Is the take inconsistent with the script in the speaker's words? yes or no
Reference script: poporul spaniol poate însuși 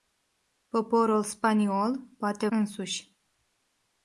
no